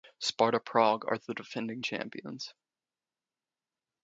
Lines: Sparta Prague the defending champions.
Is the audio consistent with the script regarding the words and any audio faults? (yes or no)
no